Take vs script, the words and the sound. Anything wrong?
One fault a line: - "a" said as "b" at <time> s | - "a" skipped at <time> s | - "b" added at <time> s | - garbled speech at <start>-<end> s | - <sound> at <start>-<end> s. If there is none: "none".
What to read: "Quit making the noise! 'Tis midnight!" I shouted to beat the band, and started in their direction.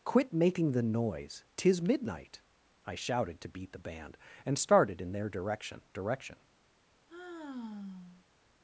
- "direction" added at 5.9 s
- sigh at 7.1-8.2 s